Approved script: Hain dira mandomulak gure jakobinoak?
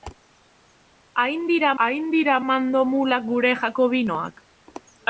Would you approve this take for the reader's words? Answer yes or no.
no